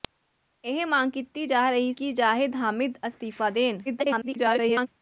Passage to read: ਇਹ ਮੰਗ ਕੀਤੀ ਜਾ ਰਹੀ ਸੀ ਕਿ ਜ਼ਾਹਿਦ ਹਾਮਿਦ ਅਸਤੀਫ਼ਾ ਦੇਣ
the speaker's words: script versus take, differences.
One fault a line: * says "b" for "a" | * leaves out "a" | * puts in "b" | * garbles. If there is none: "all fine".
* leaves out "ਸੀ"
* garbles